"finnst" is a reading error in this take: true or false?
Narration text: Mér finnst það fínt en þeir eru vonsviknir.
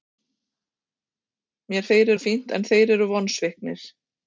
true